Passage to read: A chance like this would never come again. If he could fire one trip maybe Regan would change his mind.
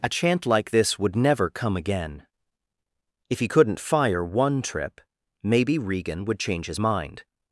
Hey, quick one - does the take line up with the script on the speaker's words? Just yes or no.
no